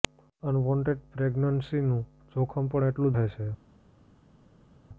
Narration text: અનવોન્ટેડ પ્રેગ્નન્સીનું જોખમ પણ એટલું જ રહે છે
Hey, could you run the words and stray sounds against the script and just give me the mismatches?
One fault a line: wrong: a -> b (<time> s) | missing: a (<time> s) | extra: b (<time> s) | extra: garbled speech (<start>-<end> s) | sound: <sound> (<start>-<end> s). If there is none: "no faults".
missing: જ (3.1 s)